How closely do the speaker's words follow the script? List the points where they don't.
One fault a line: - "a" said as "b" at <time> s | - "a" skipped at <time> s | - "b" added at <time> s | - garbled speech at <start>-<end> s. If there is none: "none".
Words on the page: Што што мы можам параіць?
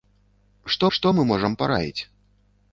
none